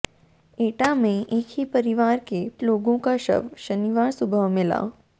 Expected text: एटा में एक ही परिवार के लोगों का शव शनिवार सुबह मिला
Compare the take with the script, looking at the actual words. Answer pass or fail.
pass